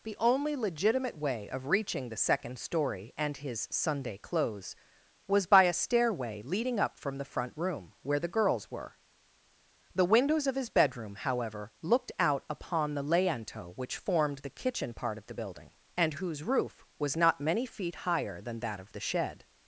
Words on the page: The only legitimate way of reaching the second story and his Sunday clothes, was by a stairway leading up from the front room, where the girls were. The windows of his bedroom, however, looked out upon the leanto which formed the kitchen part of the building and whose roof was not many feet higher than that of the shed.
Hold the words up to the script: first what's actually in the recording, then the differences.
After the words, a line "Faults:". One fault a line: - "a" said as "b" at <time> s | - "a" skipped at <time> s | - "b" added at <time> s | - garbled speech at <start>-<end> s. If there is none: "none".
The only legitimate way of reaching the second story and his Sunday clothes, was by a stairway leading up from the front room, where the girls were. The windows of his bedroom, however, looked out upon the leanto which formed the kitchen part of the building and whose roof was not many feet higher than that of the shed.
Faults:
none